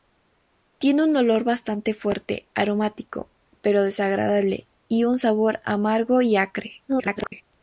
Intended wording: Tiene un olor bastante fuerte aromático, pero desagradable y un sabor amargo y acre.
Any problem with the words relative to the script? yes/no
yes